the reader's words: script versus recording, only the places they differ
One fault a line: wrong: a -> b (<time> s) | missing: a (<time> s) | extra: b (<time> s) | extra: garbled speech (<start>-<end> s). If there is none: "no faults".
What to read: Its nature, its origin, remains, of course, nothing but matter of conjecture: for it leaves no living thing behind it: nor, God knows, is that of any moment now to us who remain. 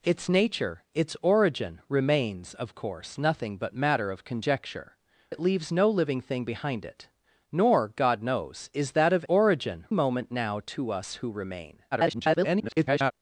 missing: for (5.0 s)
wrong: any -> origin (9.3 s)
extra: garbled speech (11.9-13.1 s)